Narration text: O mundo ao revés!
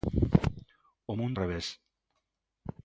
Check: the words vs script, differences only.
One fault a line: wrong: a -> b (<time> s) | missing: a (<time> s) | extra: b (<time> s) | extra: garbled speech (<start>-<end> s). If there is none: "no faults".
missing: ao (1.4 s)